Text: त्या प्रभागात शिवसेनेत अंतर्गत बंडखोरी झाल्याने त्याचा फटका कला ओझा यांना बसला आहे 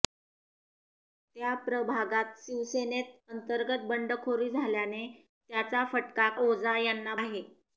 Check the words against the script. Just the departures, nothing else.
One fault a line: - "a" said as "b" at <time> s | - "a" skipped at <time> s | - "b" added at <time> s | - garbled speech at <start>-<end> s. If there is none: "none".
- "कला" skipped at 6.3 s
- "बसला" skipped at 7.1 s